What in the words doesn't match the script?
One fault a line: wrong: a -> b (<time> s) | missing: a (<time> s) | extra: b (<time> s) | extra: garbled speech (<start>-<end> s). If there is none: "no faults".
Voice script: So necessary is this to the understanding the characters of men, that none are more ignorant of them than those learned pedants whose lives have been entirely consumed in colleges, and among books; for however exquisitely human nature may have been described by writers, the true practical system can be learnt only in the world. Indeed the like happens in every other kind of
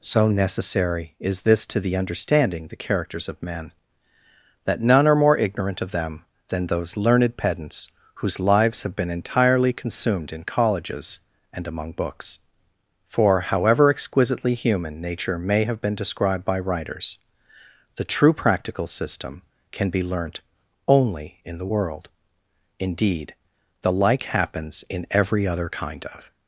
no faults